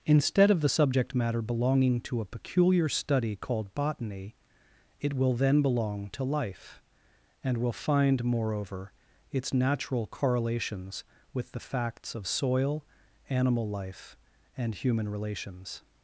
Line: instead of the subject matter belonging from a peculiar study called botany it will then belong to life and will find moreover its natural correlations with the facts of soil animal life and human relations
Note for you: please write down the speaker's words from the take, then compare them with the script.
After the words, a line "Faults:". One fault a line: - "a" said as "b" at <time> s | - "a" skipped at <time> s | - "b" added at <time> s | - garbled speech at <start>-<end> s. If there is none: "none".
instead of the subject matter belonging to a peculiar study called botany it will then belong to life and will find moreover its natural correlations with the facts of soil animal life and human relations
Faults:
- "from" said as "to" at 2.0 s